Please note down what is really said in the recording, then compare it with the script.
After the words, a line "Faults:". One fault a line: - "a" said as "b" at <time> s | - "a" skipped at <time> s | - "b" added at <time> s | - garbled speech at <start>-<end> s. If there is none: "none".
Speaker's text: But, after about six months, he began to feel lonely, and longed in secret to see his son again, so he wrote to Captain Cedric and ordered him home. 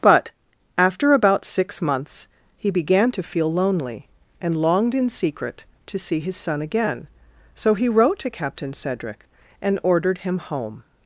But, after about six months, he began to feel lonely, and longed in secret to see his son again, so he wrote to Captain Cedric and ordered him home.
Faults:
none